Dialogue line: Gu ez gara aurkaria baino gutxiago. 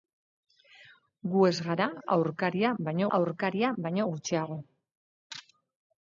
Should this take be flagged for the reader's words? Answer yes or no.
yes